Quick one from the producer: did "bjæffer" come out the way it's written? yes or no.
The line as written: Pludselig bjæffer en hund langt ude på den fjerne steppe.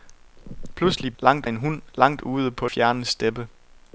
no